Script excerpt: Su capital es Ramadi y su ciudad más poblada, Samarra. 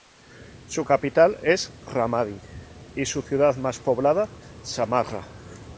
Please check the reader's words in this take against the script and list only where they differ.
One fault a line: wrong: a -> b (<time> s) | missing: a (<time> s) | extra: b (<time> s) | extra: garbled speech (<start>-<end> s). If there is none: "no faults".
no faults